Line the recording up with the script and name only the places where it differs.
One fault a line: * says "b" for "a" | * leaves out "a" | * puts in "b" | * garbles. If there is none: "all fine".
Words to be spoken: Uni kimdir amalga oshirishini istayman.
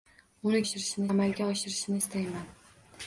* says "oshirishini" for "kimdir"